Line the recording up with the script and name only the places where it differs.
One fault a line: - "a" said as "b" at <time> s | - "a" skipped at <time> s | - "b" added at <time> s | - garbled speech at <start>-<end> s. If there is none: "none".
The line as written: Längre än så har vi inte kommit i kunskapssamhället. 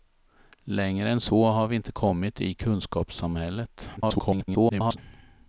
- garbled speech at 4.0-5.0 s